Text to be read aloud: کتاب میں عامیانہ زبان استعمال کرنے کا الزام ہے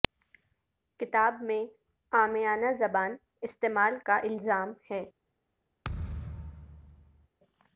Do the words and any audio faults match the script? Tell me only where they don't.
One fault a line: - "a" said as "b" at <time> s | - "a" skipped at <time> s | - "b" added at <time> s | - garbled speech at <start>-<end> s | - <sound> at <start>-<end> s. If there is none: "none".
- "کرنے" skipped at 4.0 s
- thud at 5.8-7.3 s